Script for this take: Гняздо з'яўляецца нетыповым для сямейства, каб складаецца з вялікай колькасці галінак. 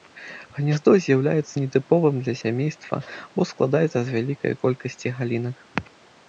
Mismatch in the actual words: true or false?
true